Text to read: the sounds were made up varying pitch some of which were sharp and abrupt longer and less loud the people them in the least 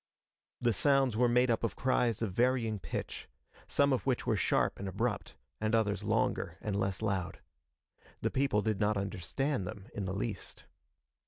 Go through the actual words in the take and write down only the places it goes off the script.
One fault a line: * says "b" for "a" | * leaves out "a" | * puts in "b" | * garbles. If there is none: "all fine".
* puts in "of cries of"
* puts in "and others"
* puts in "did not understand"